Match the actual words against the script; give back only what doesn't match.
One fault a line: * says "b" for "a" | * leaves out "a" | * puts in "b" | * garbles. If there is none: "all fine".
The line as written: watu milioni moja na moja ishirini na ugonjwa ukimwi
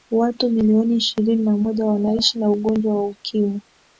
* says "ishirini" for "moja"
* says "wanaishi" for "ishirini"
* puts in "wa"